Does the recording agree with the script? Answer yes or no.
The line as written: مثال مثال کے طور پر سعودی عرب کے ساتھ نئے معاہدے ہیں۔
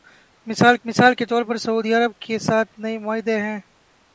yes